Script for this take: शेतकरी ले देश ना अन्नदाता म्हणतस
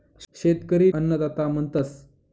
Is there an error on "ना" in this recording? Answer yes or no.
yes